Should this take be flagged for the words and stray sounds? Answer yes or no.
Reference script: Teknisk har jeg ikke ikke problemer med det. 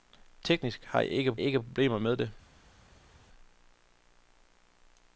no